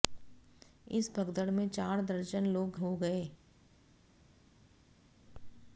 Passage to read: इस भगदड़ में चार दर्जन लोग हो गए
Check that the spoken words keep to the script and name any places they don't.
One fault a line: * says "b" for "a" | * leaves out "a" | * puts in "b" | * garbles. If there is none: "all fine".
all fine